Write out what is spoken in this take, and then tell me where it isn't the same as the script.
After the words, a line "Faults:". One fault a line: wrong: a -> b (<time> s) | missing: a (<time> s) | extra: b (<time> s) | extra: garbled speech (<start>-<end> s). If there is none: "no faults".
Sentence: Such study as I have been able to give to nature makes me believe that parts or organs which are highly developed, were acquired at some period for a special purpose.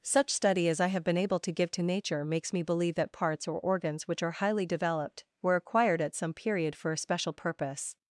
Such study as I have been able to give to nature makes me believe that parts or organs which are highly developed, were acquired at some period for a special purpose.
Faults:
no faults